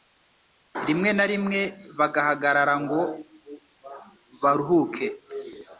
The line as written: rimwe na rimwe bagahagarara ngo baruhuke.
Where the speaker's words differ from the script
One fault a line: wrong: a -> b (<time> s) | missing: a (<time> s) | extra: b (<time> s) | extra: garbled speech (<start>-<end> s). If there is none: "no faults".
no faults